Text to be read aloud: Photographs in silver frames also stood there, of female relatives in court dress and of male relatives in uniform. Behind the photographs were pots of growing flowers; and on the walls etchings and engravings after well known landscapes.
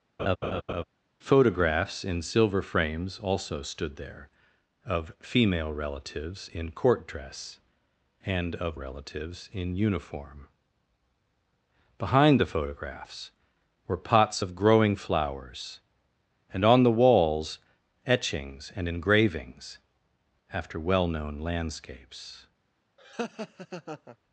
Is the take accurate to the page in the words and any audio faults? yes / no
no